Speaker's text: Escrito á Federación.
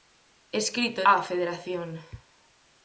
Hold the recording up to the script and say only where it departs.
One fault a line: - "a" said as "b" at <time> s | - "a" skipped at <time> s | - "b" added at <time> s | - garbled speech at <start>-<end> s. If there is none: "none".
none